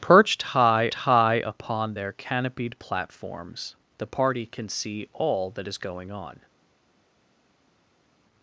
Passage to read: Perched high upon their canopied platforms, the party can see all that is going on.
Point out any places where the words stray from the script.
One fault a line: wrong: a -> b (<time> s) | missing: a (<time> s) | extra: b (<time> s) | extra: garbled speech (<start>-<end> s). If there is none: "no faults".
extra: high (0.9 s)